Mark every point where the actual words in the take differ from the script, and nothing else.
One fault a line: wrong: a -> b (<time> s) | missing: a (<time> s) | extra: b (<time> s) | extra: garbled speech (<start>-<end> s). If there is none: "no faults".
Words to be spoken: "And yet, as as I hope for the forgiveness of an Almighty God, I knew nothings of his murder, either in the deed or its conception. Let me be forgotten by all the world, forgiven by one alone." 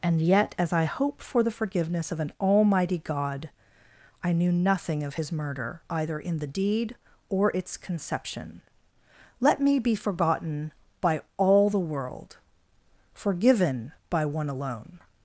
missing: as (0.7 s)
wrong: nothings -> nothing (4.5 s)